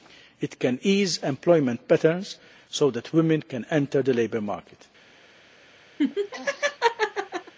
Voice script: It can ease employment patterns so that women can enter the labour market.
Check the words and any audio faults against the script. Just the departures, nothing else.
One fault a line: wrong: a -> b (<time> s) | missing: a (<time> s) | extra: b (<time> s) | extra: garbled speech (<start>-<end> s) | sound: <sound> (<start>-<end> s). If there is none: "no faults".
sound: laugh (6.0-7.5 s)